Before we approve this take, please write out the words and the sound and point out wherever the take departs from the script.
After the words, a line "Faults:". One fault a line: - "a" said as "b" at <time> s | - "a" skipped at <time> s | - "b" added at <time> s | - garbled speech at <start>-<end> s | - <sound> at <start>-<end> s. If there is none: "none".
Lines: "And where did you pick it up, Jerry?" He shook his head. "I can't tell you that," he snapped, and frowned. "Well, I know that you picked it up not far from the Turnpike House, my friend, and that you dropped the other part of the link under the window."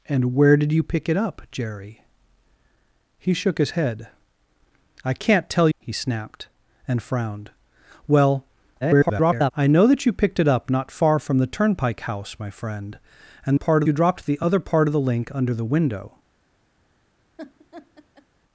"And where did you pick it up, Jerry?" He shook his head. "I can't tell," he snapped, and frowned. "Well, [garbled] I know that you picked it up not far from the Turnpike House, my friend, and part you dropped the other part of the link under the window."
Faults:
- "you that" skipped at 5.7 s
- garbled speech at 8.8-9.5 s
- "that" said as "part" at 13.5 s
- laugh at 17.4-18.3 s